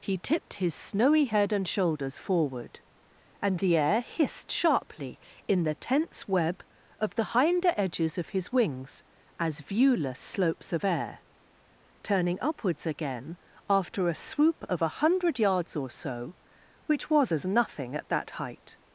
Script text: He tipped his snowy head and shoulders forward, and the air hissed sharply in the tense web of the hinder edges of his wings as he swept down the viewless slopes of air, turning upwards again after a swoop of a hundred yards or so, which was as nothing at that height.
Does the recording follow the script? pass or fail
fail